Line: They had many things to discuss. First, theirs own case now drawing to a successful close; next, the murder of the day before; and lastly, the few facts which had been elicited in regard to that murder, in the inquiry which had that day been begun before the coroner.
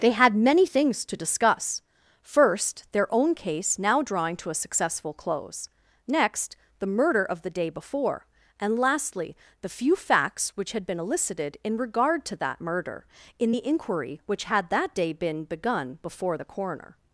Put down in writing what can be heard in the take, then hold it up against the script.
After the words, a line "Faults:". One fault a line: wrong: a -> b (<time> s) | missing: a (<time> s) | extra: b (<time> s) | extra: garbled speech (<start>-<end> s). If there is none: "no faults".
They had many things to discuss. First, their own case now drawing to a successful close; next, the murder of the day before; and lastly, the few facts which had been elicited in regard to that murder, in the inquiry which had that day been begun before the coroner.
Faults:
wrong: theirs -> their (2.9 s)